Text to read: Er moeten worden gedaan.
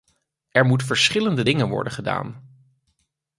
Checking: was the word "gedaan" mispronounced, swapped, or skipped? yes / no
no